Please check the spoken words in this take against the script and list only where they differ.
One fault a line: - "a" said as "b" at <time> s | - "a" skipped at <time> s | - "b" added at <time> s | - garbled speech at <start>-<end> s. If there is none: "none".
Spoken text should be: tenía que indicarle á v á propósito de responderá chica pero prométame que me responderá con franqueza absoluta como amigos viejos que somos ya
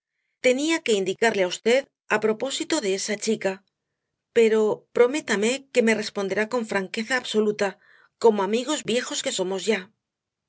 - "responderá" said as "esa" at 3.0 s